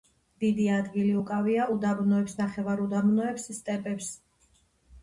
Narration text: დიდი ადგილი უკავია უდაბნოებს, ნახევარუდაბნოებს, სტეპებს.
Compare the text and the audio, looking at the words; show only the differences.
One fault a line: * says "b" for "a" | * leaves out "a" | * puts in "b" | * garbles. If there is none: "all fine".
all fine